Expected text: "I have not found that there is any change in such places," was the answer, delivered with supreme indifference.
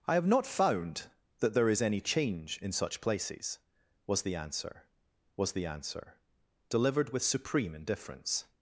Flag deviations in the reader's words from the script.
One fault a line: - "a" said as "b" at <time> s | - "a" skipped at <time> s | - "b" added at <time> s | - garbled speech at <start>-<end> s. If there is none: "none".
- "was the answer" added at 5.4 s